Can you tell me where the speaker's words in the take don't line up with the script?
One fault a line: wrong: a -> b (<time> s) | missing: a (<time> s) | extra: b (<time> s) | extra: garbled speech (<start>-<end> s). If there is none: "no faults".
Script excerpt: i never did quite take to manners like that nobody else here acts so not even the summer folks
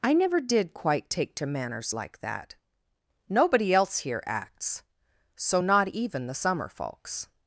no faults